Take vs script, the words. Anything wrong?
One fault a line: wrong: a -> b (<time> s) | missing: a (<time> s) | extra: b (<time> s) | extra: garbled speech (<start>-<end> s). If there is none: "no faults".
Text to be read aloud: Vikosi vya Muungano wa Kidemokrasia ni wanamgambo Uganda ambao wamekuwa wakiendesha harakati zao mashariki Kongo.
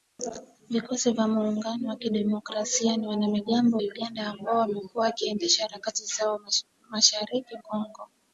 no faults